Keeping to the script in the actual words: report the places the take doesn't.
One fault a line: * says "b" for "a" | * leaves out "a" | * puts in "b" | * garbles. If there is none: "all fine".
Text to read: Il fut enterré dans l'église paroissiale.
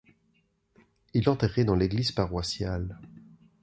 * leaves out "fut"